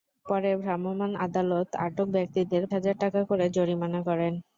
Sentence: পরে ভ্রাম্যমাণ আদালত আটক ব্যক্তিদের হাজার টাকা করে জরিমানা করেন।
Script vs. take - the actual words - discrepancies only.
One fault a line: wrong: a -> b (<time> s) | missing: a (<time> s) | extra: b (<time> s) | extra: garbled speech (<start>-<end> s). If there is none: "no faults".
no faults